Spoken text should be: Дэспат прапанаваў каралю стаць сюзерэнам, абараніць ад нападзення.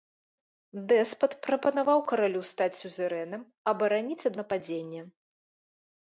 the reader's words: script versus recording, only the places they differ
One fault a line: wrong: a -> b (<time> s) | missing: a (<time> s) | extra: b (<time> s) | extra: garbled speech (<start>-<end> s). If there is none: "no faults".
no faults